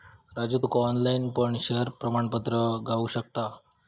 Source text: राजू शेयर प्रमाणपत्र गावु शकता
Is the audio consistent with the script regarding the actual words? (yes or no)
no